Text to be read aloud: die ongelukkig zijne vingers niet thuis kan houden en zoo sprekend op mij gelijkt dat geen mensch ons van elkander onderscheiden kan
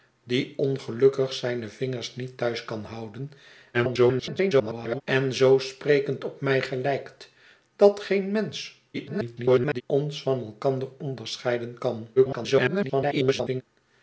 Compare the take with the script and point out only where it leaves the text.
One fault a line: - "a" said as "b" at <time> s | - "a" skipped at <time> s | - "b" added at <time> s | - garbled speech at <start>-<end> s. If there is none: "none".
- garbled speech at 3.7-5.0 s
- garbled speech at 8.9-9.8 s
- garbled speech at 12.2-13.6 s